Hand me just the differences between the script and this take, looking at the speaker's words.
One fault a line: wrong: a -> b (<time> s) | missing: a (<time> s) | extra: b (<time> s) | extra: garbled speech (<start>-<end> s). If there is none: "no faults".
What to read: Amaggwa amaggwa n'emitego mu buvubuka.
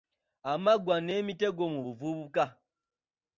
missing: amaggwa (0.9 s)